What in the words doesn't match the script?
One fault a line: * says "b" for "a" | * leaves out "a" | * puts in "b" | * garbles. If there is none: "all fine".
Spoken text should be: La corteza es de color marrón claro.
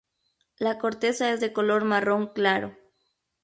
all fine